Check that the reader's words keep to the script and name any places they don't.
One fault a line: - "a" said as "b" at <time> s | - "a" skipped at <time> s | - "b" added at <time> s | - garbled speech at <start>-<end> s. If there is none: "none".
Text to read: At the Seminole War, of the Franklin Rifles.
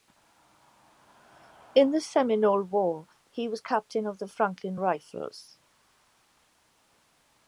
- "At" said as "In" at 1.8 s
- "he was captain" added at 3.3 s